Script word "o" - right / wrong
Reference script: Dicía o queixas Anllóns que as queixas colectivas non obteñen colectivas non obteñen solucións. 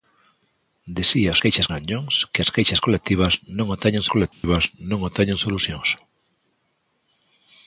right